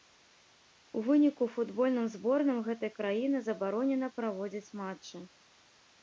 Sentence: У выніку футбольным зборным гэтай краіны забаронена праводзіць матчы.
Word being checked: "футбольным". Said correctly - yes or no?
yes